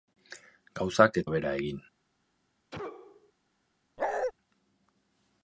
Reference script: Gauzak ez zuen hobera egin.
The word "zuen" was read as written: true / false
false